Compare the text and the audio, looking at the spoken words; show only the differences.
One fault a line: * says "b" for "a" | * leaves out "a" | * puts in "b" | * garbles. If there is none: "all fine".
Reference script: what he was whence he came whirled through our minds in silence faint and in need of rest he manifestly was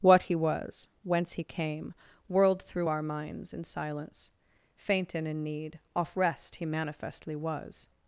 * says "off" for "of"